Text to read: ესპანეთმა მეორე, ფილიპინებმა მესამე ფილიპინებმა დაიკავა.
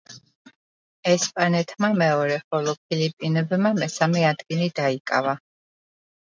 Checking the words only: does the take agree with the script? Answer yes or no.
no